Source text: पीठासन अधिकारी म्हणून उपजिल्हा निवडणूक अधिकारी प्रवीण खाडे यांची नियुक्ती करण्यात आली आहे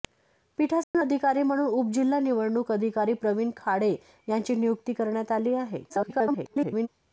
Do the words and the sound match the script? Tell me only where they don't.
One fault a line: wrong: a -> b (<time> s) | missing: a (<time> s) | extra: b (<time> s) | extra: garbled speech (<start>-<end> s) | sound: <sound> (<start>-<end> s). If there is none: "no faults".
sound: dropout (0.8-0.9 s)
extra: garbled speech (5.9-6.9 s)